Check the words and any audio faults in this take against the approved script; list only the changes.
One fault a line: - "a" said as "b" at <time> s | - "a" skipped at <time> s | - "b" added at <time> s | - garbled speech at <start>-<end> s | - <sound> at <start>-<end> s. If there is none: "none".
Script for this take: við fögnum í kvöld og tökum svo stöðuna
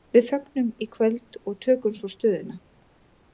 none